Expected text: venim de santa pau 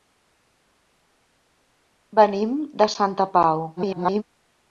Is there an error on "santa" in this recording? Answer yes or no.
no